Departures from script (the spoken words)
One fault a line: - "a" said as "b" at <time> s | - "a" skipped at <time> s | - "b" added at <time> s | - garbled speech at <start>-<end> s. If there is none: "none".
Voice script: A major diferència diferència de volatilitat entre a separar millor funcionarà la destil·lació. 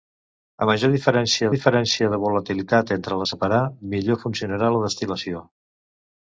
none